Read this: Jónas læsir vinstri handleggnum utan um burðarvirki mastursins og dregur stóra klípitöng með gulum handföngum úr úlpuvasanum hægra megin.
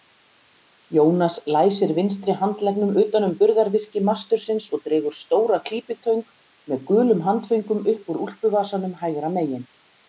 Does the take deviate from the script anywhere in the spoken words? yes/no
yes